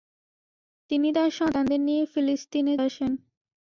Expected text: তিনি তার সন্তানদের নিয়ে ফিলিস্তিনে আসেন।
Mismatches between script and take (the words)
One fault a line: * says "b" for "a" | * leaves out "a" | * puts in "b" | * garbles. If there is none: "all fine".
all fine